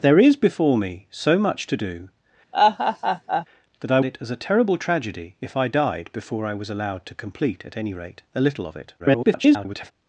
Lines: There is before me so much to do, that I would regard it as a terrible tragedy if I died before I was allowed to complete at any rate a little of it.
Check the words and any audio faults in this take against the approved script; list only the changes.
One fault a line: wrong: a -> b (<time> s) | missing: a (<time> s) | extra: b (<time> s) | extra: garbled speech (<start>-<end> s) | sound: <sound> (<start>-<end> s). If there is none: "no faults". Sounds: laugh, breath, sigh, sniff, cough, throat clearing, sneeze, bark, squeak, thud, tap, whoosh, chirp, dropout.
sound: laugh (2.5-3.5 s)
missing: would regard (4.0 s)
extra: garbled speech (9.0-9.9 s)